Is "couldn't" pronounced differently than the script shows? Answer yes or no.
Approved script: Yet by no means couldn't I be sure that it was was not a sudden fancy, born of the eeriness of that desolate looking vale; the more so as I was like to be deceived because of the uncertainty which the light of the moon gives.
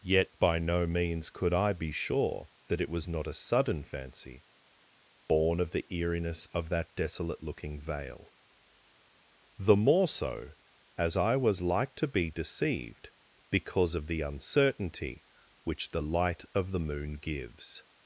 yes